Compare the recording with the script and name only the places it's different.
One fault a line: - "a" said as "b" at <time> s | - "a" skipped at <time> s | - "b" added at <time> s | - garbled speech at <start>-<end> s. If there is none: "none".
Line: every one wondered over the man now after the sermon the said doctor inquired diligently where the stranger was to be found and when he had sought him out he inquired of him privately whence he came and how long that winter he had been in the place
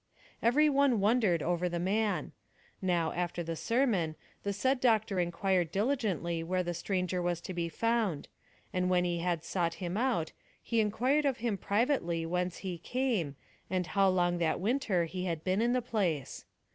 none